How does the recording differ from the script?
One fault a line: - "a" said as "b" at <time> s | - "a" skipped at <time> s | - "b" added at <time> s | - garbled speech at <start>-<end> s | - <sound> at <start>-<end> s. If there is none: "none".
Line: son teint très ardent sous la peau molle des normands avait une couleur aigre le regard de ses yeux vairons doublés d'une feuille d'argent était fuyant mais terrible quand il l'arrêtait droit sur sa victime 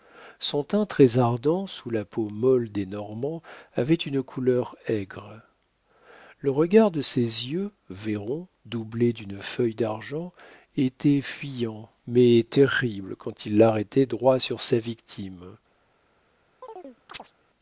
- chirp at 16.6-17.3 s